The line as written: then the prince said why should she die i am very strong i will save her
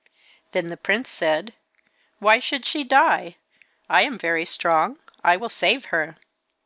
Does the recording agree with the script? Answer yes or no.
yes